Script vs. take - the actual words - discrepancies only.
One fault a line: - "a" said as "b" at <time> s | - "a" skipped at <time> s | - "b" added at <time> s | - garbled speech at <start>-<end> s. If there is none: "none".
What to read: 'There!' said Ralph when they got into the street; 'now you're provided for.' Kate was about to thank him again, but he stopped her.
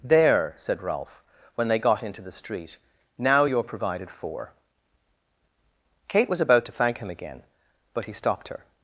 none